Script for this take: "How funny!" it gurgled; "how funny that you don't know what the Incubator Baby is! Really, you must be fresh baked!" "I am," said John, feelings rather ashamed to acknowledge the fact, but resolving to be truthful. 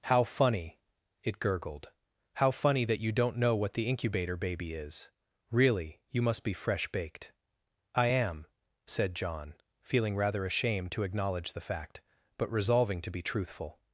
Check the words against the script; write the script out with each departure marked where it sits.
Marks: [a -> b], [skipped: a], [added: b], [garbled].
"How funny!" it gurgled; "how funny that you don't know what the Incubator Baby is! Really, you must be fresh baked!" "I am," said John, [feelings -> feeling] rather ashamed to acknowledge the fact, but resolving to be truthful.